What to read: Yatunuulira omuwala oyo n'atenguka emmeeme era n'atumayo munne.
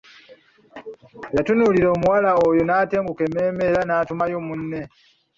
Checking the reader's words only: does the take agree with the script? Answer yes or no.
yes